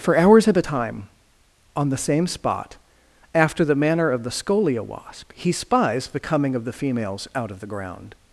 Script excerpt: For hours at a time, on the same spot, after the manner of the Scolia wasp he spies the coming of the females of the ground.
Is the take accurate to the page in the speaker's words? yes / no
no